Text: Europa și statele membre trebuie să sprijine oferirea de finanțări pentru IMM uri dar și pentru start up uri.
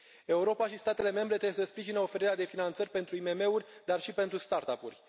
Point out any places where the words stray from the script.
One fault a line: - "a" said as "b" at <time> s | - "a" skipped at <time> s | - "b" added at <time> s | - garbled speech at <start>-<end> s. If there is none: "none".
none